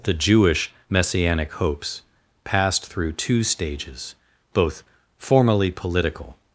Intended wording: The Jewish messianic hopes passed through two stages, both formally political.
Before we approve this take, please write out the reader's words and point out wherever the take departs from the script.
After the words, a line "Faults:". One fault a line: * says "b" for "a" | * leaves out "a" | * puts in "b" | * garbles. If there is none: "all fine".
The Jewish messianic hopes passed through two stages, both formally political.
Faults:
all fine